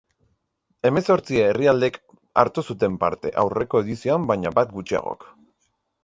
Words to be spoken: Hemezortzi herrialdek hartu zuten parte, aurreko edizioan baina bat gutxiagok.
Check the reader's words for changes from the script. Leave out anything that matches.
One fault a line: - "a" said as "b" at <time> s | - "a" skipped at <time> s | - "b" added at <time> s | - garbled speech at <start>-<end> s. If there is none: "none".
none